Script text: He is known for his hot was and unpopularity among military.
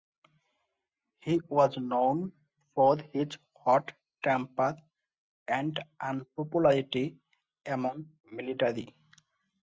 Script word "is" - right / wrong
wrong